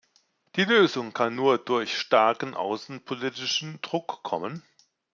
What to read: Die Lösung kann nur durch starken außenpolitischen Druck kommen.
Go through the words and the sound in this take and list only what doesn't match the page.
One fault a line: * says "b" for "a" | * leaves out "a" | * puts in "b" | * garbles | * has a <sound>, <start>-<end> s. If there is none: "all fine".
all fine